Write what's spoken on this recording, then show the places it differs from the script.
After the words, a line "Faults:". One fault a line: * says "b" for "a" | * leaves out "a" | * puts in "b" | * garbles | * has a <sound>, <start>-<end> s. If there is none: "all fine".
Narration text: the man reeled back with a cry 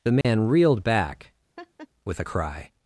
the man reeled back with a cry
Faults:
* has a dropout, 0.2-0.2 s
* has a laugh, 1.6-1.9 s